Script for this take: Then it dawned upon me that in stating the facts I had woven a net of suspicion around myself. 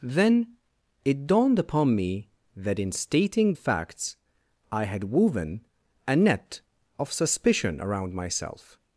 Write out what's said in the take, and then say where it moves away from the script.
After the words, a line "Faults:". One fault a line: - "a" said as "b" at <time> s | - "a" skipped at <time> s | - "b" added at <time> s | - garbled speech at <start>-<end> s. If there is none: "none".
Then it dawned upon me that in stating facts I had woven a net of suspicion around myself.
Faults:
- "the" skipped at 3.5 s